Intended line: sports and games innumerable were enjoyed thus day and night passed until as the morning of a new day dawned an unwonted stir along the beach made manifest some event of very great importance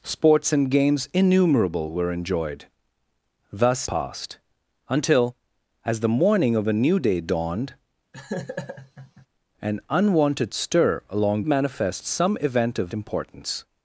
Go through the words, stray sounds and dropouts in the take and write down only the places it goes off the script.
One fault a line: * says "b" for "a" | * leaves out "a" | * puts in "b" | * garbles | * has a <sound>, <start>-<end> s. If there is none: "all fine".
* leaves out "day and night"
* has a laugh, 8.1-9.3 s
* leaves out "the beach made"
* leaves out "very great"